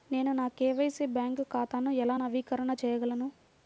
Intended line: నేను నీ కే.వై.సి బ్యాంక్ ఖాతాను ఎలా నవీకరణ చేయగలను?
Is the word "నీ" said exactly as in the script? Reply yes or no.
no